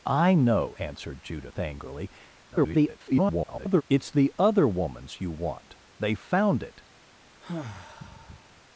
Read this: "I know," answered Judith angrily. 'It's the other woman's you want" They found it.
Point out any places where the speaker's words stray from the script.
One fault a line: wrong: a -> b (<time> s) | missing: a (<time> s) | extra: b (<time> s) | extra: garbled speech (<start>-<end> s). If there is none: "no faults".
extra: garbled speech (2.5-3.8 s)